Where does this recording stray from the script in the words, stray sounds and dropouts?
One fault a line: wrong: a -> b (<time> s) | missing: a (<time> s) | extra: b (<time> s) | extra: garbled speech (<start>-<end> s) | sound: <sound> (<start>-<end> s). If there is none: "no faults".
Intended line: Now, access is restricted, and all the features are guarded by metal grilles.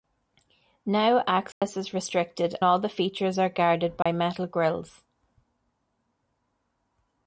sound: dropout (1.5-1.6 s)
missing: and (2.5 s)
sound: dropout (4.0-4.1 s)